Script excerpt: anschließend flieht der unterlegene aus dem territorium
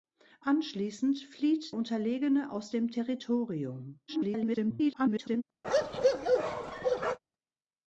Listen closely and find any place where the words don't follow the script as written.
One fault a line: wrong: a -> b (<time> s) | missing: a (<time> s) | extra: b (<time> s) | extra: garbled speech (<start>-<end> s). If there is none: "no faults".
missing: der (1.8 s)
extra: garbled speech (4.1-5.4 s)